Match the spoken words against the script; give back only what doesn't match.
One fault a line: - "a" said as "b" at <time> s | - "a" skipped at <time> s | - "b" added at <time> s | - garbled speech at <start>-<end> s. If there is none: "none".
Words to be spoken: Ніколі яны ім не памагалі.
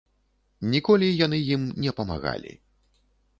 none